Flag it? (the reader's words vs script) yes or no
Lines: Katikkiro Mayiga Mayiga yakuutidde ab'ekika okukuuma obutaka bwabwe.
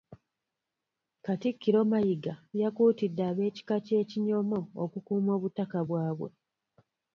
yes